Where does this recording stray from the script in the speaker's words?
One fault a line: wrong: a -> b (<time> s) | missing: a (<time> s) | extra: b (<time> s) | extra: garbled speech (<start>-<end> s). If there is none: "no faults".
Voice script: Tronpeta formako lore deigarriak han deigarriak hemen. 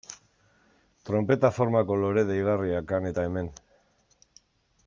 wrong: deigarriak -> eta (3.1 s)